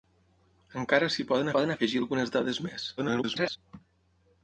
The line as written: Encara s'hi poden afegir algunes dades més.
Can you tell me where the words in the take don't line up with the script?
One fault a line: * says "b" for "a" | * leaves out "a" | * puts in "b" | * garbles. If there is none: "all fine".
* puts in "poden"
* garbles